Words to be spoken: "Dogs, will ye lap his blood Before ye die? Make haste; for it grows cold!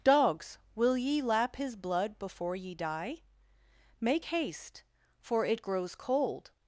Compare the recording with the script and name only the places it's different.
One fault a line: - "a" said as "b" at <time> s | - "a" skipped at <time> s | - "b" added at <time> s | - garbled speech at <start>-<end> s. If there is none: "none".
none